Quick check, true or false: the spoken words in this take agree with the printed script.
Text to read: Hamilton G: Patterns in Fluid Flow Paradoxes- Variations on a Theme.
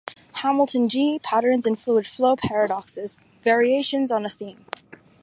true